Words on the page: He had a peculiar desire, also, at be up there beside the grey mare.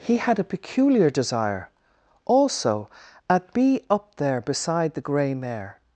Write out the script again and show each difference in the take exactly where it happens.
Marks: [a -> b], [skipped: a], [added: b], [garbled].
He had a peculiar desire, also, at be up there beside the grey mare.